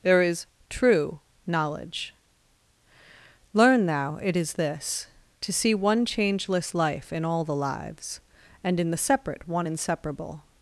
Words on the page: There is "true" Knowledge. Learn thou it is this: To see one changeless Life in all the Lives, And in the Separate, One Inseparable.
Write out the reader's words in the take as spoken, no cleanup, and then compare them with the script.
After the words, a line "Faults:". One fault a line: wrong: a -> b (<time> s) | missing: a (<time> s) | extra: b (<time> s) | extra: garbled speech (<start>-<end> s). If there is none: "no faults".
There is "true" Knowledge. Learn thou it is this: To see one changeless Life in all the Lives, And in the Separate, One Inseparable.
Faults:
no faults